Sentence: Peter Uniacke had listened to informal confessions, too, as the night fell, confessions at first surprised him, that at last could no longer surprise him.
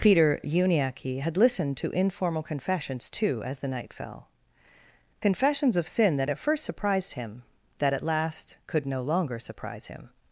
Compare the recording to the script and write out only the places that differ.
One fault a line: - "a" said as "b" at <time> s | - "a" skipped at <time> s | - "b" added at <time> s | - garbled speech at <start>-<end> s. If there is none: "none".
- "of sin that" added at 5.7 s